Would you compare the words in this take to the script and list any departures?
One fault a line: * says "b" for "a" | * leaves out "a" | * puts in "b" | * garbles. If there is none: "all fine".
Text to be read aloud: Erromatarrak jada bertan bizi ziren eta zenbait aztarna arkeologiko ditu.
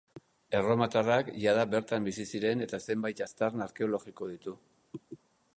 all fine